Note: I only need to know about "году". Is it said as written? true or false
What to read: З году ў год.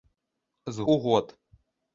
false